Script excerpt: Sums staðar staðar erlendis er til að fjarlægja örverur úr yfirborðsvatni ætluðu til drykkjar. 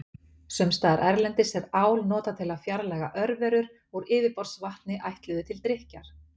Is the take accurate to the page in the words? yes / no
no